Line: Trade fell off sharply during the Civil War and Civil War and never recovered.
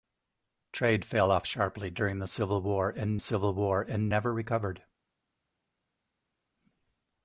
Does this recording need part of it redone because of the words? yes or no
no